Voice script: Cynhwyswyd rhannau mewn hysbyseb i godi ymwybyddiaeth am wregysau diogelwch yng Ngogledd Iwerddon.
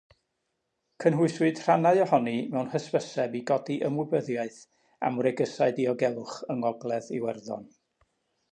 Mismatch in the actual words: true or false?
true